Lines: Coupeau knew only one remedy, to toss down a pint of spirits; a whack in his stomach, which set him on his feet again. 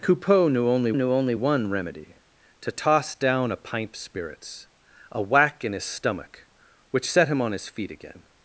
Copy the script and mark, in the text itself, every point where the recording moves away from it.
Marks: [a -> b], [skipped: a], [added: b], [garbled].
Coupeau knew only [added: knew only] one remedy, to toss down a pint [skipped: of] spirits; a whack in his stomach, which set him on his feet again.